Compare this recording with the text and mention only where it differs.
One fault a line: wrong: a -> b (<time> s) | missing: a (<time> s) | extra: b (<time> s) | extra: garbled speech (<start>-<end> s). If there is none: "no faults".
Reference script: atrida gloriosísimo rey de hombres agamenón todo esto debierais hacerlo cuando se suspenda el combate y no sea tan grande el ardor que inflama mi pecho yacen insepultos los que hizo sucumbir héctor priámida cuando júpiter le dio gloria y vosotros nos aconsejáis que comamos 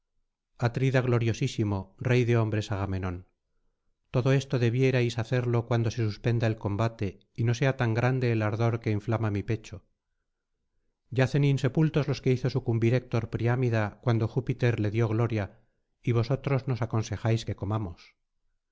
no faults